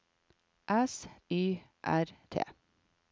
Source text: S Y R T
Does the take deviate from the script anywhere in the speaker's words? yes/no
no